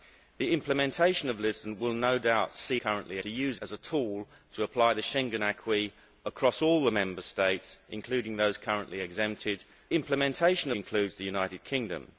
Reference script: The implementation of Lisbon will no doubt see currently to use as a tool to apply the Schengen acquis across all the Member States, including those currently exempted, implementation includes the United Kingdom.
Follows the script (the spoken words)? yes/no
yes